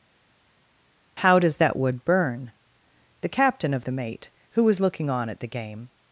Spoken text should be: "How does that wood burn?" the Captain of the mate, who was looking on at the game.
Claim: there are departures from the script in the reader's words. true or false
false